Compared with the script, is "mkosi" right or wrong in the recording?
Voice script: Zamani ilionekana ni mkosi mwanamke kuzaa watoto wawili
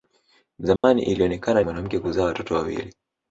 wrong